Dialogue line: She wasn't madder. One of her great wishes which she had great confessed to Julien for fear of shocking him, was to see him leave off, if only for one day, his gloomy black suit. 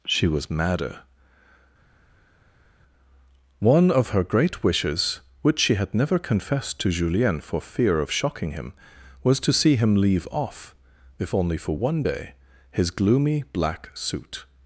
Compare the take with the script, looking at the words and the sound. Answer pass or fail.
fail